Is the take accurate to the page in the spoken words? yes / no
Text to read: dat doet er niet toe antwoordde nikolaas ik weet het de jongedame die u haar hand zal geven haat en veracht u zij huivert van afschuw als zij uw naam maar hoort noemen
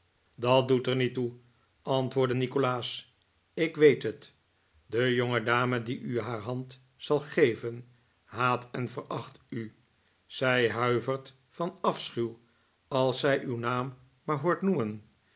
yes